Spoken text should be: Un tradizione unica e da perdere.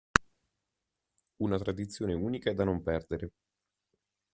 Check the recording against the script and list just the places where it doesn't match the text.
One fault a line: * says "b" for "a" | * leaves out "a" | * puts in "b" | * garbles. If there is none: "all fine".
* says "Una" for "Un"
* puts in "non"